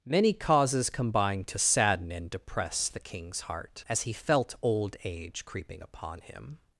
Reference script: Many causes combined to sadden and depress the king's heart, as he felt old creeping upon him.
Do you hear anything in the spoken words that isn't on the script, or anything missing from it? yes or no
yes